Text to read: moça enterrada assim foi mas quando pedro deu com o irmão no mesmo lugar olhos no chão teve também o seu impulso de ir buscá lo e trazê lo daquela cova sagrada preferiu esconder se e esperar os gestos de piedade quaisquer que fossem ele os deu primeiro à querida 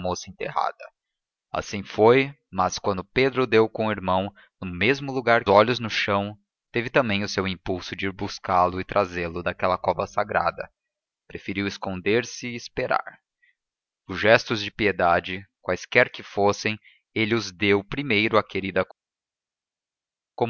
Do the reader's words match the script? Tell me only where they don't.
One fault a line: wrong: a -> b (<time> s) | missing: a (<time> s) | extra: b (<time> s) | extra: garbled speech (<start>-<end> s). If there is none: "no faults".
no faults